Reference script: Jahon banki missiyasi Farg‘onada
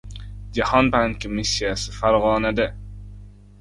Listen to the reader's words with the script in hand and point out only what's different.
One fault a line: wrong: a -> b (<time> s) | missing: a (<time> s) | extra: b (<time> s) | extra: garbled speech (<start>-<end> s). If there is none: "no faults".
no faults